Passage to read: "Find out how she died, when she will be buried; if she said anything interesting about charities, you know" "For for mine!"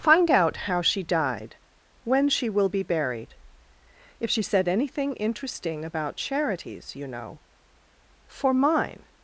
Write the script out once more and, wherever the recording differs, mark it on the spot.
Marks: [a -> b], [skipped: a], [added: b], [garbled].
"Find out how she died, when she will be buried; if she said anything interesting about charities, you know" "For [skipped: for] mine!"